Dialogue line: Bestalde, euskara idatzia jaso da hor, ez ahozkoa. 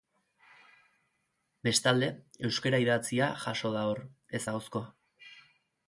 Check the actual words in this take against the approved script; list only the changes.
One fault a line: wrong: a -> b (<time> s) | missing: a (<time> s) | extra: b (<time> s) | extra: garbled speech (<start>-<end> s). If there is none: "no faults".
no faults